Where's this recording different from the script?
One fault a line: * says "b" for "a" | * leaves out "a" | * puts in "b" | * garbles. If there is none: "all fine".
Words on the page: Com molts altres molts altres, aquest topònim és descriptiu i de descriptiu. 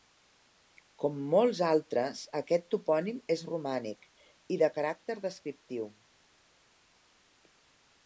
* leaves out "molts altres"
* says "romànic" for "descriptiu"
* puts in "caràcter"